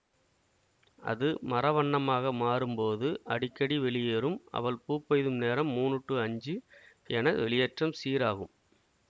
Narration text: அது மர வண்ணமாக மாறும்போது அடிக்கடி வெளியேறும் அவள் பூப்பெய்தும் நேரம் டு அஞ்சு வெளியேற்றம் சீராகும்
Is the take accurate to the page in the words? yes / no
no